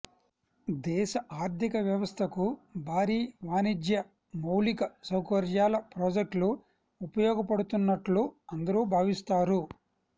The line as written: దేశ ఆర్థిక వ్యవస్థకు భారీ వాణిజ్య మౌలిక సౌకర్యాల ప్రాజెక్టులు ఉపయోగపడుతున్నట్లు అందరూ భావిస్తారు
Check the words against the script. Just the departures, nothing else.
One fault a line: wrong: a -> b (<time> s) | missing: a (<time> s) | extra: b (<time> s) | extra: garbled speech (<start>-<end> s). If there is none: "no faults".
no faults